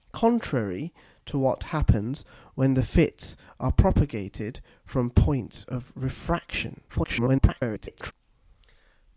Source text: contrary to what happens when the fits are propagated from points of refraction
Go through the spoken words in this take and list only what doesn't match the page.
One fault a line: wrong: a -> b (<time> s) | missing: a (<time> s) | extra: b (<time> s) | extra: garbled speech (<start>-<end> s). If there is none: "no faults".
extra: garbled speech (6.9-8.1 s)